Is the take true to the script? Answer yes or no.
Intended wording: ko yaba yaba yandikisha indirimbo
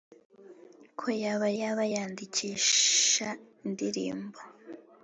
yes